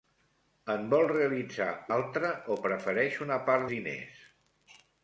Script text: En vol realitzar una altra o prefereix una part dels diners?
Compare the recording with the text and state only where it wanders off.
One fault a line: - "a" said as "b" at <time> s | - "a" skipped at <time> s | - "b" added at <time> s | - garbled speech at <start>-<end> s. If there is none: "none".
- "una" skipped at 1.7 s
- "dels" skipped at 3.7 s